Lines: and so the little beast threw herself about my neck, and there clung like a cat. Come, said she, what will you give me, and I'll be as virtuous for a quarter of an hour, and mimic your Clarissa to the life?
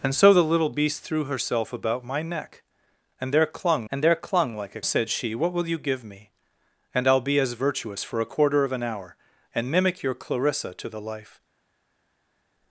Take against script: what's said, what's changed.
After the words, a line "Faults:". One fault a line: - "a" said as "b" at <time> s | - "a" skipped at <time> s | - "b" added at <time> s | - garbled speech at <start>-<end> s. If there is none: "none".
and so the little beast threw herself about my neck, and there clung and there clung like a said she, what will you give me, and I'll be as virtuous for a quarter of an hour, and mimic your Clarissa to the life?
Faults:
- "and there clung" added at 3.9 s
- "cat Come" skipped at 4.8 s